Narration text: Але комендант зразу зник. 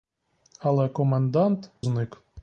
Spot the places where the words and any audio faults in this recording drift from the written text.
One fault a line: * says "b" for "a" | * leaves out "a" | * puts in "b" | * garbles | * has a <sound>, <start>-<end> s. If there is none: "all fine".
* leaves out "зразу"